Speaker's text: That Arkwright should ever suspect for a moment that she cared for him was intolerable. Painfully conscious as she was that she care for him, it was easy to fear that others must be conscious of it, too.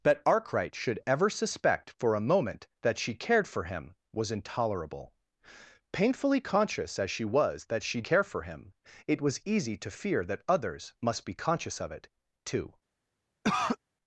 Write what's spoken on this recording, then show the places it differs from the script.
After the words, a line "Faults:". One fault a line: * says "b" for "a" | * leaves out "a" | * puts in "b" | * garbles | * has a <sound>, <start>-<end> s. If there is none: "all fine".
That Arkwright should ever suspect for a moment that she cared for him was intolerable. Painfully conscious as she was that she care for him, it was easy to fear that others must be conscious of it, too.
Faults:
* has a cough, 13.4-13.8 s